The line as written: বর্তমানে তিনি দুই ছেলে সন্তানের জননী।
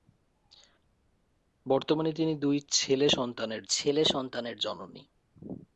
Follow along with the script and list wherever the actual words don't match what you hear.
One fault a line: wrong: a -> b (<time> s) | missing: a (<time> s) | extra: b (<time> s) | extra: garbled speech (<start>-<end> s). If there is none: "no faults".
extra: ছেলে সন্তানের (3.7 s)